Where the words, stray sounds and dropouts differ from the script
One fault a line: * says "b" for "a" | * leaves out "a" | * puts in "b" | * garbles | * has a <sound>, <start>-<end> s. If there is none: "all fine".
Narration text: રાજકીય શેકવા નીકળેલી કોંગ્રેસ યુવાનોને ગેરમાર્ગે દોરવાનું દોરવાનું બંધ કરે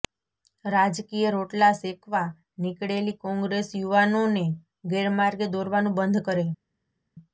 * puts in "રોટલા"
* leaves out "દોરવાનું"